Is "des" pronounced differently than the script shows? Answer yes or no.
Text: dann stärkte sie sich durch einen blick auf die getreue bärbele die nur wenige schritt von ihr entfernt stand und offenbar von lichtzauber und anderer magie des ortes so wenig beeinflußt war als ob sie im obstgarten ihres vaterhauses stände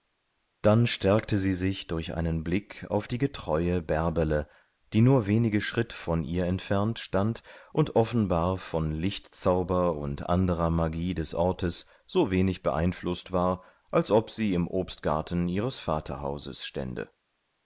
no